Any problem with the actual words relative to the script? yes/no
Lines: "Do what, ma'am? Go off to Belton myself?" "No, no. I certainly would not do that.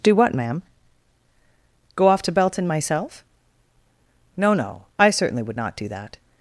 no